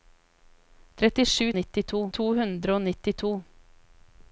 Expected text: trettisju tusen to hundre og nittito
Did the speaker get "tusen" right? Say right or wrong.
wrong